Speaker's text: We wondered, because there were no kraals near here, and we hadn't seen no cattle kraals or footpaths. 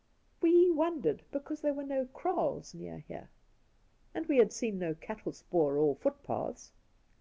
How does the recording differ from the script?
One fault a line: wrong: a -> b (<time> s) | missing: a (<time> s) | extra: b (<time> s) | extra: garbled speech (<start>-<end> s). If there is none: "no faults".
wrong: hadn't -> had (4.4 s)
wrong: kraals -> spoor (5.3 s)